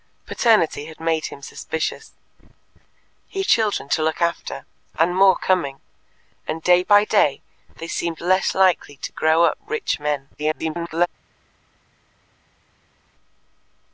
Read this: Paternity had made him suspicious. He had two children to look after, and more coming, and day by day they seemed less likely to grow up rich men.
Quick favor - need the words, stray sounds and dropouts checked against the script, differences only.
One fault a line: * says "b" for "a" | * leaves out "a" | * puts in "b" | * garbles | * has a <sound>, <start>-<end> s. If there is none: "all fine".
* leaves out "had two"
* garbles